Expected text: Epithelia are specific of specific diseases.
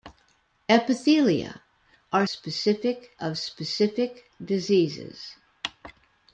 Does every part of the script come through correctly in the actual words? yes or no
yes